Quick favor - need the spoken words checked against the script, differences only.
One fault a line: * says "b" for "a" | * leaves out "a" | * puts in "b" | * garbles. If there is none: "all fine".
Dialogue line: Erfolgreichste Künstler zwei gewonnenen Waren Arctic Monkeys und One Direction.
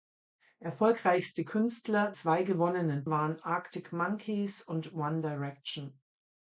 all fine